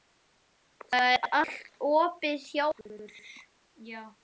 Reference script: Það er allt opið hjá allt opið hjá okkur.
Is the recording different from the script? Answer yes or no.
yes